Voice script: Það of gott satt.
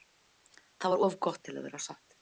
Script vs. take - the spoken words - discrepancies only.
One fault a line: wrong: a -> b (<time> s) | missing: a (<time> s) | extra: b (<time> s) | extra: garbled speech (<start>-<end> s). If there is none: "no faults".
extra: var (0.9 s)
extra: til að vera (1.5 s)